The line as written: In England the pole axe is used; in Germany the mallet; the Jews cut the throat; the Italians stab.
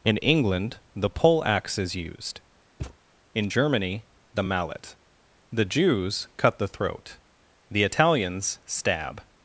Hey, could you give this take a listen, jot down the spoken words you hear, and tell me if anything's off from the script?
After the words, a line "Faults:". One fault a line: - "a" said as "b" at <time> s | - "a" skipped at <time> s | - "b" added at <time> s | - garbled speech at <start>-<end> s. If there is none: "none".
In England the pole axe is used; in Germany the mallet; the Jews cut the throat; the Italians stab.
Faults:
none